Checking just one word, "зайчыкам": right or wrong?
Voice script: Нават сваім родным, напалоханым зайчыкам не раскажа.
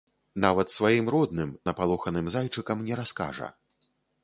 right